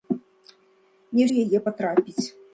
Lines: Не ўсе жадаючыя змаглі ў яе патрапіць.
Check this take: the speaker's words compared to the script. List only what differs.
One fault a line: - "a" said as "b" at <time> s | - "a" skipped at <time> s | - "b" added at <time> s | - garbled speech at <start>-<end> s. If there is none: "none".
- "ўсе жадаючыя змаглі" skipped at 1.3 s